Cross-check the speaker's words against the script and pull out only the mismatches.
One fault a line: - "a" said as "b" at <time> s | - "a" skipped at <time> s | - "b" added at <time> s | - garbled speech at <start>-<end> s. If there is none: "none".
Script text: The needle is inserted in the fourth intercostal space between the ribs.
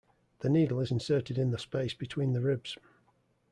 - "fourth intercostal" skipped at 1.6 s